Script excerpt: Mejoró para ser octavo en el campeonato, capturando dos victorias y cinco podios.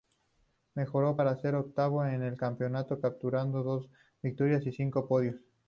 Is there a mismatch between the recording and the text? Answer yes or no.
no